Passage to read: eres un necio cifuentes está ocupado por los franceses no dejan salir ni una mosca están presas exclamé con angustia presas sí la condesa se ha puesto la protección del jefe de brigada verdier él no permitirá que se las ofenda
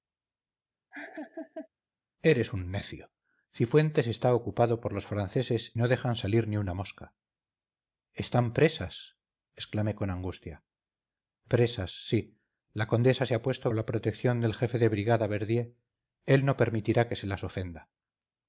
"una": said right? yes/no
yes